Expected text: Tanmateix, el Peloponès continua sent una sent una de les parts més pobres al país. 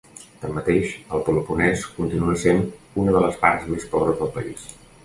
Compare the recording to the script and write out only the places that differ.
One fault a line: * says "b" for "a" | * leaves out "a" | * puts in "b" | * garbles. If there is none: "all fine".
* leaves out "sent una"
* says "del" for "al"